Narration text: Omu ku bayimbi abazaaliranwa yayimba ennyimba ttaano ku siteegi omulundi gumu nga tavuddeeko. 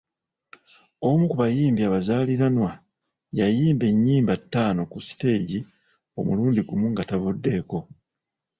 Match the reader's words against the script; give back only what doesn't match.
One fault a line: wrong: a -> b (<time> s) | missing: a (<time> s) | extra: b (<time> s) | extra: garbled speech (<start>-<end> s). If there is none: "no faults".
no faults